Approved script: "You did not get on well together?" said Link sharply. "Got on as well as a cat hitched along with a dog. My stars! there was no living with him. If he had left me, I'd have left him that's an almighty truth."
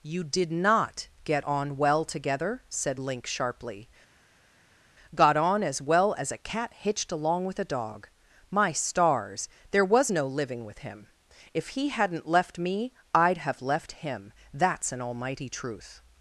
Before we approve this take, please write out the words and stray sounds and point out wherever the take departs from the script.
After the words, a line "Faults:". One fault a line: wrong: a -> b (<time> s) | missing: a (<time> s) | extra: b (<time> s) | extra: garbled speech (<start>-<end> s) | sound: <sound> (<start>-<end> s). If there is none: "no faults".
"You did not get on well together?" said Link sharply. "Got on as well as a cat hitched along with a dog. My stars! there was no living with him. If he hadn't left me, I'd have left him that's an almighty truth."
Faults:
wrong: had -> hadn't (11.9 s)